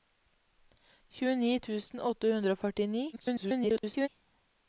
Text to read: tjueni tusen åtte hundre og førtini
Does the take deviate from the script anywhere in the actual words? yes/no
yes